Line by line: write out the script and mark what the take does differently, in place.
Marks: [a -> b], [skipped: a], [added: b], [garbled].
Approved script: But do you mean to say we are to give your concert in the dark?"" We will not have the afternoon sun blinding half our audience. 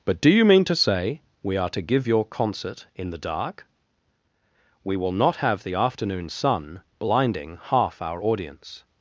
But do you mean to say we are to give your concert in the dark?"" We will not have the afternoon sun blinding half our audience.